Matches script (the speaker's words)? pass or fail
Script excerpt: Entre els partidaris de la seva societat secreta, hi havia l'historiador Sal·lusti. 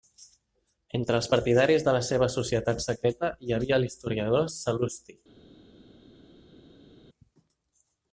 pass